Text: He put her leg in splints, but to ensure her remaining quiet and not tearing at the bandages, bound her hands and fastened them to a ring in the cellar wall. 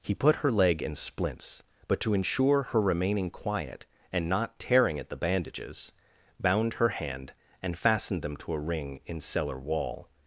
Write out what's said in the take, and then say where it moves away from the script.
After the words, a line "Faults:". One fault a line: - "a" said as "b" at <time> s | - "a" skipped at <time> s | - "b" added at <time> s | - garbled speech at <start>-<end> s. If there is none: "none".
He put her leg in splints, but to ensure her remaining quiet and not tearing at the bandages, bound her hand and fastened them to a ring in cellar wall.
Faults:
- "hands" said as "hand" at 6.9 s
- "the" skipped at 9.2 s